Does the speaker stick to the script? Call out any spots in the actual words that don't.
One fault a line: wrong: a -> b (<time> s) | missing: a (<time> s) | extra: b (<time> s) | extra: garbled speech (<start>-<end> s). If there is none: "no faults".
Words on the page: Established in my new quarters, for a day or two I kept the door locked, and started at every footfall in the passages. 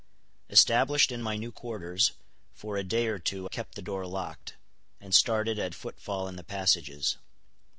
missing: I (3.5 s)
missing: every (5.8 s)